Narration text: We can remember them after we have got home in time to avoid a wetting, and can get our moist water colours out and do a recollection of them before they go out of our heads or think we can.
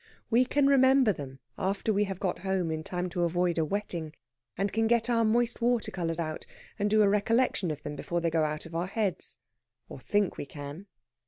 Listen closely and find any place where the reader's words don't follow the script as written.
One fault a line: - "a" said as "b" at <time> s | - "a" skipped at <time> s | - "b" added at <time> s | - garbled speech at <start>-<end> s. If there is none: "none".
none